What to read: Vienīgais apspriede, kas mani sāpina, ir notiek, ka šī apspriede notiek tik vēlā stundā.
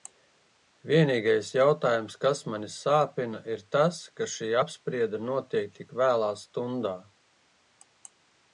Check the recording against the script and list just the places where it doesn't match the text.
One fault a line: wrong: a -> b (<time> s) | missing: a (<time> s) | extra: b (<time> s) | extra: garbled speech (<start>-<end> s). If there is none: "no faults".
wrong: apspriede -> jautājums (1.6 s)
wrong: notiek -> tas (3.8 s)